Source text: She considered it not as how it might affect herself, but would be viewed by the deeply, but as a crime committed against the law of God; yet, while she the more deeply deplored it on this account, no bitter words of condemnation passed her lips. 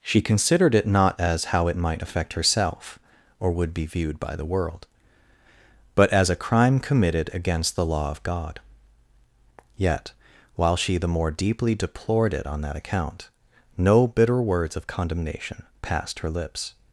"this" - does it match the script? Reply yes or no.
no